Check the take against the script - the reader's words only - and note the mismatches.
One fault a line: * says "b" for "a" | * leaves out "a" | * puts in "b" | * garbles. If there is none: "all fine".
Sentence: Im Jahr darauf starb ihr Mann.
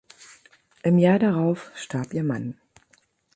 all fine